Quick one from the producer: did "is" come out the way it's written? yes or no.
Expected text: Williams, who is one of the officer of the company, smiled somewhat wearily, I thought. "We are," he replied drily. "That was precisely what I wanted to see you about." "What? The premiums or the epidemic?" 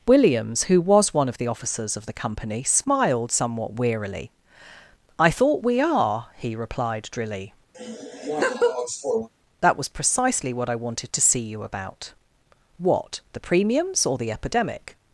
no